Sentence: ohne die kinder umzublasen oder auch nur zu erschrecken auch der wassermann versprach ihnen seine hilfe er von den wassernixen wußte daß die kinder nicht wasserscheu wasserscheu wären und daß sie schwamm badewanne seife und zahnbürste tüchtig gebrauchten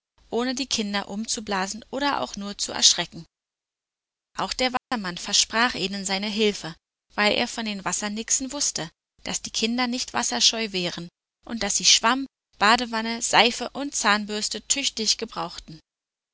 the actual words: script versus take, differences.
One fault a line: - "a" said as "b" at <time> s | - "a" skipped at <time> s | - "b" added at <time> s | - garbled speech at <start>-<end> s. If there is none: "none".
- "weil" added at 7.1 s
- "wasserscheu" skipped at 10.7 s